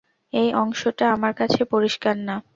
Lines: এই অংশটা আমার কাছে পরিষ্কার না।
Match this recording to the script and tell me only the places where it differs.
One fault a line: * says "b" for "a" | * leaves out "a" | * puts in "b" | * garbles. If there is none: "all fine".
all fine